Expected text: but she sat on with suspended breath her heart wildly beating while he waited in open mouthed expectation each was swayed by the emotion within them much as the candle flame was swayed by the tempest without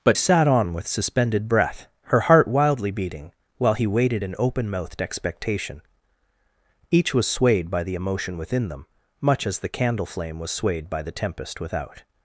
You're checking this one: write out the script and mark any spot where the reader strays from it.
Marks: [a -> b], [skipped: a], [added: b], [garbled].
but [skipped: she] sat on with suspended breath her heart wildly beating while he waited in open mouthed expectation each was swayed by the emotion within them much as the candle flame was swayed by the tempest without